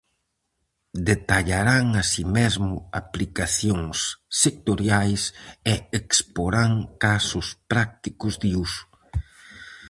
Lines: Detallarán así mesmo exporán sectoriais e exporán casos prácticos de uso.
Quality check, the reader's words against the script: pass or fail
fail